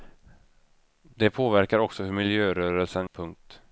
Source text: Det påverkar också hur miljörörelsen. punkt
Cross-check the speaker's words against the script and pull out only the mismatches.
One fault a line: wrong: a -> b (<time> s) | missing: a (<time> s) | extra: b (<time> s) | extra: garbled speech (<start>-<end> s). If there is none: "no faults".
no faults